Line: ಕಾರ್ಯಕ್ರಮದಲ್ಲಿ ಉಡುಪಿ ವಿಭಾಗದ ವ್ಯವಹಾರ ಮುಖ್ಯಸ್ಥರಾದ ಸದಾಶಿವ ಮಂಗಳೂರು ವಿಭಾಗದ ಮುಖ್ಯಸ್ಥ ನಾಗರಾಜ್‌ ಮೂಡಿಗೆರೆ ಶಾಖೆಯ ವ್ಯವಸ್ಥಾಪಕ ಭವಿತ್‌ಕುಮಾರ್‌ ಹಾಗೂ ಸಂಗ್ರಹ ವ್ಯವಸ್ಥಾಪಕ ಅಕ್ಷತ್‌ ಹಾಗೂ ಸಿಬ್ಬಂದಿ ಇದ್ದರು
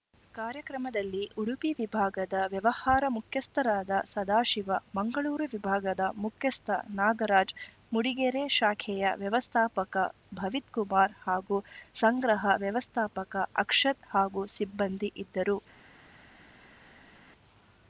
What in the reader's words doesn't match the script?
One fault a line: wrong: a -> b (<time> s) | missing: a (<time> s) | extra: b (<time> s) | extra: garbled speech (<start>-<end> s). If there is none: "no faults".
no faults